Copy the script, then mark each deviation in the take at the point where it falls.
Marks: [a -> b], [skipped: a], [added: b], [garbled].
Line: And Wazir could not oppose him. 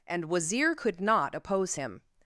And Wazir could not oppose him.